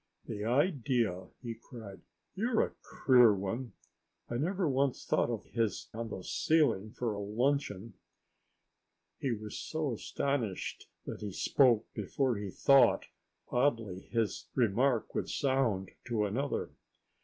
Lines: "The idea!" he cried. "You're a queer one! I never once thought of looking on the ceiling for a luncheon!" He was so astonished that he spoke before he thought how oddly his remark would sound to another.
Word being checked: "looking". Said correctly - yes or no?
no